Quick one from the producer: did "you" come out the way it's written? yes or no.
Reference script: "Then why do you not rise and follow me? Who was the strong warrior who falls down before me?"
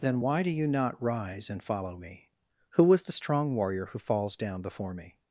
yes